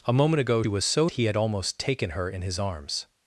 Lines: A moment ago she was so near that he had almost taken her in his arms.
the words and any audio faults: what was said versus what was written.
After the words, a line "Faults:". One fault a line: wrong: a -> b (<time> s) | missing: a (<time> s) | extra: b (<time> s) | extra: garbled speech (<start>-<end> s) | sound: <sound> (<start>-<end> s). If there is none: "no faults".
A moment ago was so he had almost taken her in his arms.
Faults:
missing: she (0.6 s)
missing: near that (1.1 s)